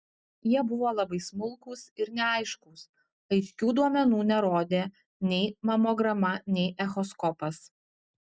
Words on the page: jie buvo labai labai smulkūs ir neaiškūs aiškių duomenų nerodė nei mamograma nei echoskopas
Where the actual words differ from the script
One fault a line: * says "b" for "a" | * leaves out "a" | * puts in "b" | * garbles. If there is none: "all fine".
* leaves out "labai"